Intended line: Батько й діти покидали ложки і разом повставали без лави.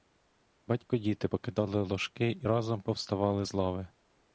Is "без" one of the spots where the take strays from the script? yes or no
yes